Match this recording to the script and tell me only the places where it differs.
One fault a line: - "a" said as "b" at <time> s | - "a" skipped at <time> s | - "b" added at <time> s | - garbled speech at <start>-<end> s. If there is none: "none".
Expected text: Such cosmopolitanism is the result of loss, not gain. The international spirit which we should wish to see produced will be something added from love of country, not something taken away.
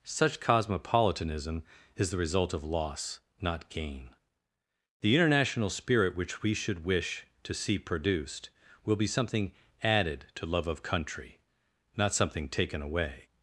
- "from" said as "to" at 10.3 s